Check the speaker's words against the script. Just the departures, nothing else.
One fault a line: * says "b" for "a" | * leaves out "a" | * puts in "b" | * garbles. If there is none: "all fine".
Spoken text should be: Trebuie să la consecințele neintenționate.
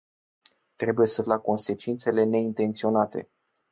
all fine